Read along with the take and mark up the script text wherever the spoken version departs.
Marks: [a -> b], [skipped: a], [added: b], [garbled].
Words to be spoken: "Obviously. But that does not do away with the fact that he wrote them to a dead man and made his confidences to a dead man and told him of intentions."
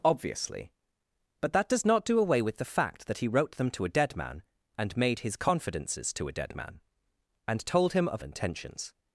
"Obviously. But that does not do away with the fact that he wrote them to a dead man and made his confidences to a dead man and told him of intentions."